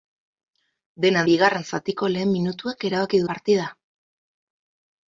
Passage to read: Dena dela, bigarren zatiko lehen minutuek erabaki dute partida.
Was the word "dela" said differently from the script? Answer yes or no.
yes